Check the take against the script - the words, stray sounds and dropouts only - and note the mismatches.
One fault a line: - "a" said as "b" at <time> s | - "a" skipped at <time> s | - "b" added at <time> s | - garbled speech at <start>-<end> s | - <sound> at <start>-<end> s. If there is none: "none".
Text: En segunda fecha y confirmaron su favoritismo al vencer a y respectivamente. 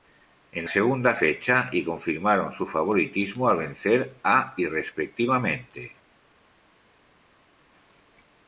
none